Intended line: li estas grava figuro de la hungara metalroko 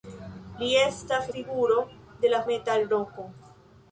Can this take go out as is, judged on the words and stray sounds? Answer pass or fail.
fail